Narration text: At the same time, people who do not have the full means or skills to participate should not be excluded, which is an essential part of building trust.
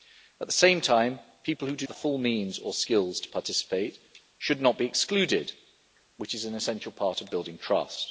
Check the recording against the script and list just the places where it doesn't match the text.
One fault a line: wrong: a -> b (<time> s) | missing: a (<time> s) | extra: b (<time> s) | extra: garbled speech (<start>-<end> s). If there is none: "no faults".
missing: not have (1.9 s)